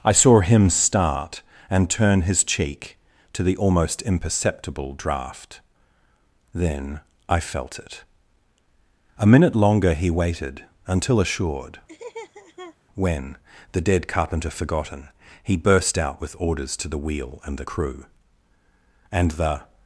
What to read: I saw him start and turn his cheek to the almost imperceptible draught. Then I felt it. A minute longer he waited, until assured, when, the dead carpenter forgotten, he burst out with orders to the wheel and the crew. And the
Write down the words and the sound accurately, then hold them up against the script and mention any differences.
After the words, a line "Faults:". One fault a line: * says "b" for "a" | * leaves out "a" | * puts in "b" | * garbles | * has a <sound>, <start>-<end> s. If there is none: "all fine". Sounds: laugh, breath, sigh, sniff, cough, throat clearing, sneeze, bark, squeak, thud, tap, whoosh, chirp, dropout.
I saw him start and turn his cheek to the almost imperceptible draught. Then I felt it. A minute longer he waited, until assured, when, the dead carpenter forgotten, he burst out with orders to the wheel and the crew. And the
Faults:
* has a laugh, 11.9-12.8 s